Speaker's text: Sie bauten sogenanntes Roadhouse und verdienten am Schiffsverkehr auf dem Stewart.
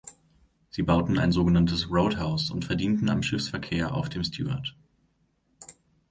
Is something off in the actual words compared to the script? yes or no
yes